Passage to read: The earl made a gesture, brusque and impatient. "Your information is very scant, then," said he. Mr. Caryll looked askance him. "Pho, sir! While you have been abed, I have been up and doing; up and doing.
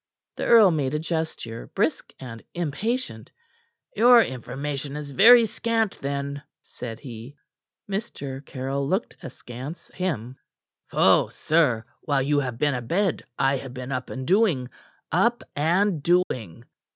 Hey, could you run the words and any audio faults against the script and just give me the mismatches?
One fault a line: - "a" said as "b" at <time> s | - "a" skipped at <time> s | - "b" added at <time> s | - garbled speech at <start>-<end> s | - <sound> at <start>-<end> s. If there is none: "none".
- dropout at 16.2-16.3 s